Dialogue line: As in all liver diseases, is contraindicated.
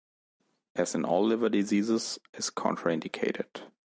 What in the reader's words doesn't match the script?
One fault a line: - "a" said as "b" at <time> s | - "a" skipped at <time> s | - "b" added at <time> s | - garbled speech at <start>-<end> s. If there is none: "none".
none